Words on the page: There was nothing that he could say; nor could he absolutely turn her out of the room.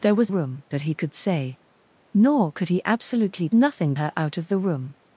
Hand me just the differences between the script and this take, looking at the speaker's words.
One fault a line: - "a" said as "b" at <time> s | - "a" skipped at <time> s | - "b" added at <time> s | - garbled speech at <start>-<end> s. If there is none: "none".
- "nothing" said as "room" at 0.3 s
- "turn" said as "nothing" at 3.5 s